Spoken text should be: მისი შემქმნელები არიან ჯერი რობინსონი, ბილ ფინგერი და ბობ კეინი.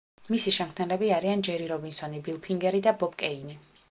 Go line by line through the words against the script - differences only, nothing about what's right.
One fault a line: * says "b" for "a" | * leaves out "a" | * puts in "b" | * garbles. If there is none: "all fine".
all fine